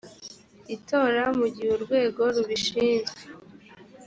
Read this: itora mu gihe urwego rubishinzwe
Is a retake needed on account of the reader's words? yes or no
no